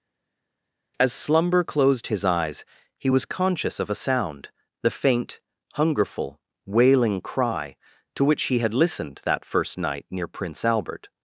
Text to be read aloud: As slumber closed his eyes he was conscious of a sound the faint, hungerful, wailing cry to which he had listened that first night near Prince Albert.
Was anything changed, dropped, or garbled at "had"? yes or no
no